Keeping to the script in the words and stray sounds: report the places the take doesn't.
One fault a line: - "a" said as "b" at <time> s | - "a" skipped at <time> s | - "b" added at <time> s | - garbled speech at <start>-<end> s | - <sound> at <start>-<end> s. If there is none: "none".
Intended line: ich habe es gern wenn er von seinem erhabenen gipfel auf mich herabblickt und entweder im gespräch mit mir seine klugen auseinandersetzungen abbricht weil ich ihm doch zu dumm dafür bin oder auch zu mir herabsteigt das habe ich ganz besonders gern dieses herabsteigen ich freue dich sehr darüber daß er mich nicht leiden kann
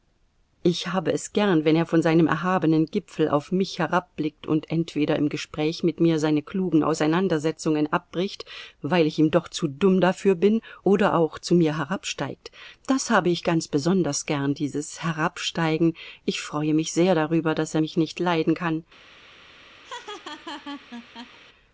- "dich" said as "mich" at 16.7 s
- laugh at 19.8-21.4 s